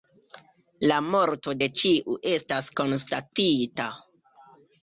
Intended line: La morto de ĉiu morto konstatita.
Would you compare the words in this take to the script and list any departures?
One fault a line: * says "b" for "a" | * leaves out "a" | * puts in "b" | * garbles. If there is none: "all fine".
* says "estas" for "morto"